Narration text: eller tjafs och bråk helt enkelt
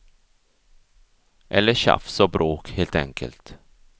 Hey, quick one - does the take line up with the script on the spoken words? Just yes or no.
yes